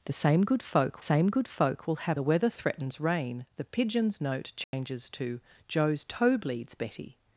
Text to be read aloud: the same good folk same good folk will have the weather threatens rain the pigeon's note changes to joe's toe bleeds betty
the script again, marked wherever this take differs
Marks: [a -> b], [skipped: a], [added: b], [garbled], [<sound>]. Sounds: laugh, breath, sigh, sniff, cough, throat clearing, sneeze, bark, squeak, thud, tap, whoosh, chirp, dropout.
the same good folk same good folk will have the weather threatens rain the pigeon's note changes [dropout] to joe's toe bleeds betty